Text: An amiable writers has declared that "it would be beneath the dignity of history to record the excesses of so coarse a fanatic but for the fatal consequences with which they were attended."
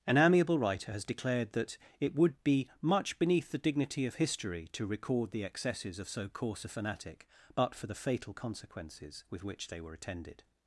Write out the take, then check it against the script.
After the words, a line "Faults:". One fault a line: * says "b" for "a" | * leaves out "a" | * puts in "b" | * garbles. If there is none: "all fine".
An amiable writer has declared that "it would be much beneath the dignity of history to record the excesses of so coarse a fanatic but for the fatal consequences with which they were attended."
Faults:
* says "writer" for "writers"
* puts in "much"